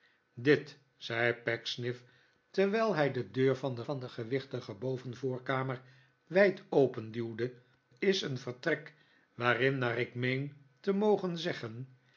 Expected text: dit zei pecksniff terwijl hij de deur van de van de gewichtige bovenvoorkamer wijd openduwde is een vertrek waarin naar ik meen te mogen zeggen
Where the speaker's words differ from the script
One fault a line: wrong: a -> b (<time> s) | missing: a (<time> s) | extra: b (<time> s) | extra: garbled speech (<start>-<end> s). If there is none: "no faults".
no faults